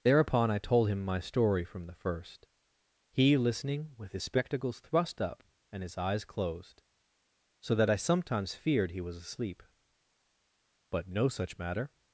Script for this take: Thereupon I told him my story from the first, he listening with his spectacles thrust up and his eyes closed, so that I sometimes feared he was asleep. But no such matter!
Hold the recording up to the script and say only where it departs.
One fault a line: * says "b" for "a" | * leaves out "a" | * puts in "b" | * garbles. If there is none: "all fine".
all fine